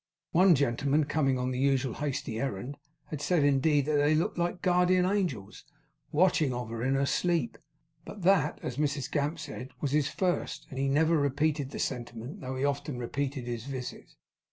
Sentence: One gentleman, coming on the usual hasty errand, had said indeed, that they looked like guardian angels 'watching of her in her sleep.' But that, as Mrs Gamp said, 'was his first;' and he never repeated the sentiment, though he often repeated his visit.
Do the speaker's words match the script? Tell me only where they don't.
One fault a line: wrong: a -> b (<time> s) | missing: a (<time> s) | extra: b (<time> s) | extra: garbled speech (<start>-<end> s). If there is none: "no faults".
no faults